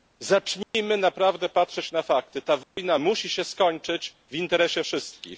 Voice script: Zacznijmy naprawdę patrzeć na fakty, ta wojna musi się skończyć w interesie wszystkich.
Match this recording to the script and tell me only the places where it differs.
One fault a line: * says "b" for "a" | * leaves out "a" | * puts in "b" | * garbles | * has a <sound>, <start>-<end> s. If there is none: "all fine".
* has a dropout, 0.6-0.7 s
* has a dropout, 2.6-2.8 s